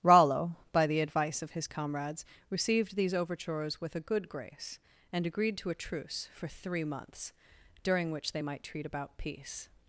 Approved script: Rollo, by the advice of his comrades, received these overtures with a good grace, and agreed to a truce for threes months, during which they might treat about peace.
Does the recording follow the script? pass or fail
fail